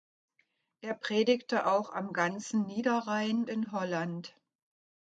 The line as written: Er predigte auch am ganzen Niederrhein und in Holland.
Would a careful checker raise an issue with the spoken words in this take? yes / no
yes